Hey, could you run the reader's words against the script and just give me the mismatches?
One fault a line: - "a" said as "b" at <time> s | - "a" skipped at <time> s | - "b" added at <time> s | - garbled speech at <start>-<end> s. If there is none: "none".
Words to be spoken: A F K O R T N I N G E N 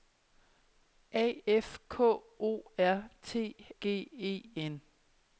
- "N I N" skipped at 3.6 s